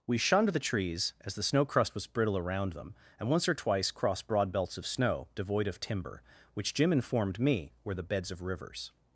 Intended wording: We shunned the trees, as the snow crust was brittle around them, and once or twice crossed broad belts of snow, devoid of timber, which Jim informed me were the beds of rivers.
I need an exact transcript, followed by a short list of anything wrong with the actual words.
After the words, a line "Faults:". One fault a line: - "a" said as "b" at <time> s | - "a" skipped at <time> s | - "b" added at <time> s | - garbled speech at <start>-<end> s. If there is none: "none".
We shunned the trees, as the snow crust was brittle around them, and once or twice crossed broad belts of snow, devoid of timber, which Jim informed me were the beds of rivers.
Faults:
none